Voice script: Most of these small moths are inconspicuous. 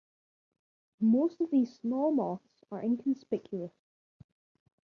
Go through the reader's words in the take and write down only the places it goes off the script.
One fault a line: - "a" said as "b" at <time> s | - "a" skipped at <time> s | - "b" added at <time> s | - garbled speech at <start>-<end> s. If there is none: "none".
none